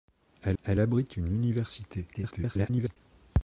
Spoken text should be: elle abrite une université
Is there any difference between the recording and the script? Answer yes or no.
yes